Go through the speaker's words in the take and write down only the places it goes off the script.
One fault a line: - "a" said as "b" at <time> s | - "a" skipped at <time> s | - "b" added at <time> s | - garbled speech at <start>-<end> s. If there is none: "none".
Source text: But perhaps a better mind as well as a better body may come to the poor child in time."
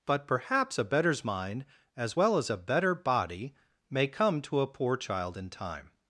- "better" said as "betters" at 0.8 s
- "the" said as "a" at 4.6 s